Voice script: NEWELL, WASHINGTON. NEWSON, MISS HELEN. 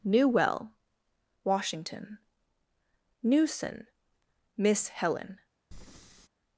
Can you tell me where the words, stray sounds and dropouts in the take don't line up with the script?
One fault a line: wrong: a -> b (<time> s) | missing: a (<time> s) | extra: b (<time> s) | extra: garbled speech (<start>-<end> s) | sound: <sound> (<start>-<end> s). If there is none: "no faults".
sound: breath (5.7-6.3 s)